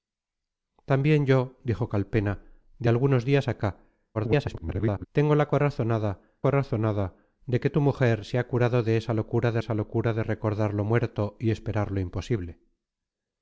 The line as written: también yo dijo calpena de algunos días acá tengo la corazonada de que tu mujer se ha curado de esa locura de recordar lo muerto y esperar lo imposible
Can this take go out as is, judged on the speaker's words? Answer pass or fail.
fail